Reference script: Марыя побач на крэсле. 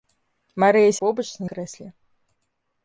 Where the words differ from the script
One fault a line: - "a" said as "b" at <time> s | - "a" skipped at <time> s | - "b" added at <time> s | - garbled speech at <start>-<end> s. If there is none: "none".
none